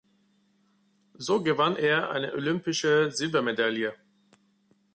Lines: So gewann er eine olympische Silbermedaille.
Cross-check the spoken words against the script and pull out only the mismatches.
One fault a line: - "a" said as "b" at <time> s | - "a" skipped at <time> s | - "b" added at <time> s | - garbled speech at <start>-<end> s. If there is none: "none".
none